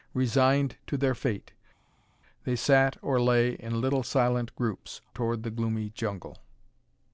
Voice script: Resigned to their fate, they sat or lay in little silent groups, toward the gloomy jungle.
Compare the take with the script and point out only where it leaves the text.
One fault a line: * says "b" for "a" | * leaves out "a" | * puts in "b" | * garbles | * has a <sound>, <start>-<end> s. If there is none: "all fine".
all fine